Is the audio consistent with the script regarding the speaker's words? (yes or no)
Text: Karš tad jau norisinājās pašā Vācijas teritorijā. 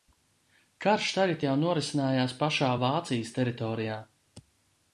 no